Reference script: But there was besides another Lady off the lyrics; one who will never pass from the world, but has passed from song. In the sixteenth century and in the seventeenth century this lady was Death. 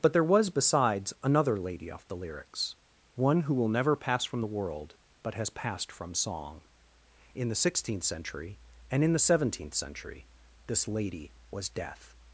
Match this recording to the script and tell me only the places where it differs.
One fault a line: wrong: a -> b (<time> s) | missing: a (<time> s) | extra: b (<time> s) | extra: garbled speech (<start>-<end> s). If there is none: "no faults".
no faults